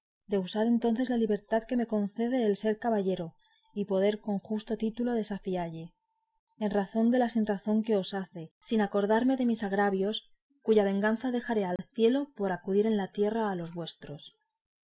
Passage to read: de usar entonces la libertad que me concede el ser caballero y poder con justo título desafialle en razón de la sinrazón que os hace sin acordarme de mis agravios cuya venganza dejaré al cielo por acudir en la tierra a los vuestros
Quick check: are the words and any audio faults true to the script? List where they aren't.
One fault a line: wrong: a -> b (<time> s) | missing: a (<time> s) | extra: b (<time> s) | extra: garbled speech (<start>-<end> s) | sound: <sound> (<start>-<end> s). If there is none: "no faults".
sound: dropout (11.8-11.8 s)